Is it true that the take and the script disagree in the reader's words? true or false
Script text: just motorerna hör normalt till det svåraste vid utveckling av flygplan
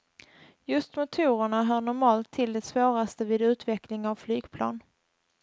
false